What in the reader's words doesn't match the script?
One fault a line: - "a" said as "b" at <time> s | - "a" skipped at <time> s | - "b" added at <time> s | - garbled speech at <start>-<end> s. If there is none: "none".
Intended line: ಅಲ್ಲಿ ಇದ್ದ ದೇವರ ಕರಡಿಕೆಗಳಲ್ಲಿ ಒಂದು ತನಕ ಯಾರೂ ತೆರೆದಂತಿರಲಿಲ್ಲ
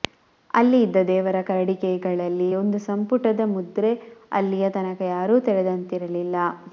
- "ಸಂಪುಟದ ಮುದ್ರೆ ಅಲ್ಲಿಯ" added at 2.9 s